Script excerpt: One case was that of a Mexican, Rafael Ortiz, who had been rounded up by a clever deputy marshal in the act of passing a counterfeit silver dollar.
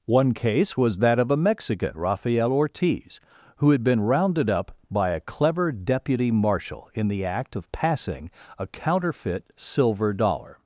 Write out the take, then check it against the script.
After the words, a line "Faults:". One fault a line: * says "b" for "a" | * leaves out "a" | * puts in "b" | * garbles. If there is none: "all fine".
One case was that of a Mexican, Rafael Ortiz, who had been rounded up by a clever deputy marshal in the act of passing a counterfeit silver dollar.
Faults:
all fine